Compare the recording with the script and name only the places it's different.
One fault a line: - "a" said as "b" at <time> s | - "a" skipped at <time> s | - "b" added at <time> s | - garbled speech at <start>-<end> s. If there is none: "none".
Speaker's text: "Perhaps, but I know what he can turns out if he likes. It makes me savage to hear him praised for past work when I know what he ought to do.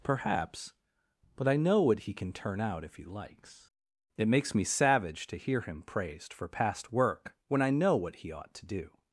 - "turns" said as "turn" at 2.3 s